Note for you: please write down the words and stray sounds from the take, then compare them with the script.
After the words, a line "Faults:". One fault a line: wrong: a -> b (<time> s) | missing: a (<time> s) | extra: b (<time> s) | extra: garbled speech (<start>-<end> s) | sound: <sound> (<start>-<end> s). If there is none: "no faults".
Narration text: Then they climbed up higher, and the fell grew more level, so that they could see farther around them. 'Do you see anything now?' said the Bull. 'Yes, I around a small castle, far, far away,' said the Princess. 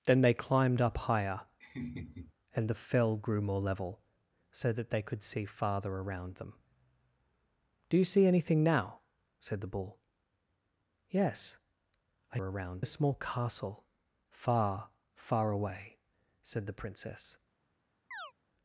Then they climbed up higher, and the fell grew more level, so that they could see farther around them. 'Do you see anything now?' said the Bull. 'Yes, I around a small castle, far, far away,' said the Princess.
Faults:
sound: laugh (1.6-2.3 s)
sound: chirp (18.1-18.3 s)